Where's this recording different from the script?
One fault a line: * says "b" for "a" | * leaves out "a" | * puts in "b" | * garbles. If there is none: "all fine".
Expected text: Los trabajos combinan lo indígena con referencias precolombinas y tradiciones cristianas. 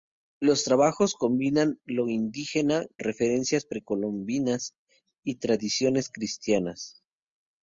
* leaves out "con"